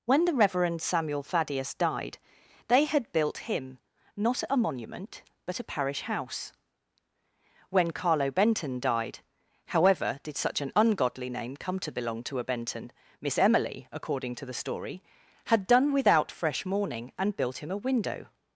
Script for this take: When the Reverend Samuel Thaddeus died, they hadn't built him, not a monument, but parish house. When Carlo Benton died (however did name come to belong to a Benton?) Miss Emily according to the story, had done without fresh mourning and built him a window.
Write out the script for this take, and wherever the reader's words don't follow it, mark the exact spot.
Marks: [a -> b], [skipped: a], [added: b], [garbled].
When the Reverend Samuel Thaddeus died, they [hadn't -> had] built him, not a monument, but [added: a] parish house. When Carlo Benton died (however did [added: such an ungodly] name come to belong to a Benton?) Miss Emily according to the story, had done without fresh mourning and built him a window.